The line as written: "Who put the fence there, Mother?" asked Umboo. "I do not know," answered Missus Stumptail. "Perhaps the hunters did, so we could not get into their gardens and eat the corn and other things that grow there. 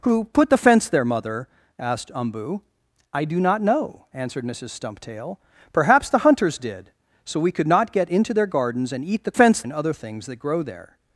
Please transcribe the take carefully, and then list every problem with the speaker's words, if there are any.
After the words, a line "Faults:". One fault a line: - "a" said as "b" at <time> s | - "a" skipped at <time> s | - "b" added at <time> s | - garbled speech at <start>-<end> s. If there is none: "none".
"Who put the fence there, Mother?" asked Umboo. "I do not know," answered Missus Stumptail. "Perhaps the hunters did, so we could not get into their gardens and eat the fence and other things that grow there.
Faults:
- "corn" said as "fence" at 9.3 s